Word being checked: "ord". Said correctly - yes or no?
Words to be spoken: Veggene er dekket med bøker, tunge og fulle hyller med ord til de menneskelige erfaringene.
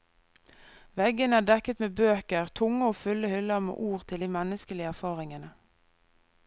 yes